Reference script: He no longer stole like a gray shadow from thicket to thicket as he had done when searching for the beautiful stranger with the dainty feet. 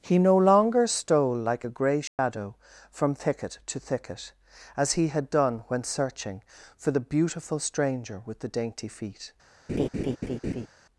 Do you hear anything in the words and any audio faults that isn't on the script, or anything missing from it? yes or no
yes